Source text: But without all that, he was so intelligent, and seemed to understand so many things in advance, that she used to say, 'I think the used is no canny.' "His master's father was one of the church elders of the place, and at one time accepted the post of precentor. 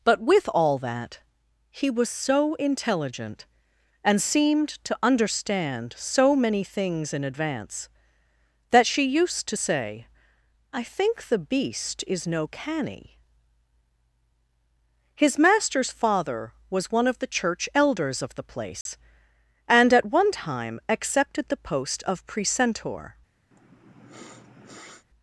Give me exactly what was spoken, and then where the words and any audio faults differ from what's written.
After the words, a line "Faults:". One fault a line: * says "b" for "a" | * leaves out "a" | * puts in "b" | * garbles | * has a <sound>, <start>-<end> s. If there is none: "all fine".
But with all that, he was so intelligent, and seemed to understand so many things in advance, that she used to say, 'I think the beast is no canny.' "His master's father was one of the church elders of the place, and at one time accepted the post of precentor.
Faults:
* says "with" for "without"
* says "beast" for "used"
* has a dropout, 18.8-18.9 s
* has a sniff, 23.5-25.0 s